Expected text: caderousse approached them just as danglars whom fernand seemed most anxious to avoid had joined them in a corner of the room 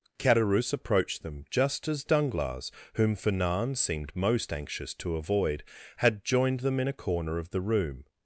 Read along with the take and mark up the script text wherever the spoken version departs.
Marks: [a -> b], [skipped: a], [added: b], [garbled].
caderousse approached them just as danglars whom fernand seemed most anxious to avoid had joined them in a corner of the room